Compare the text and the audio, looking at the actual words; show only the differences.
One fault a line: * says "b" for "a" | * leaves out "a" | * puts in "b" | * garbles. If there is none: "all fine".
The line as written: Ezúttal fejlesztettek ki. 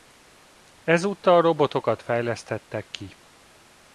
* puts in "robotokat"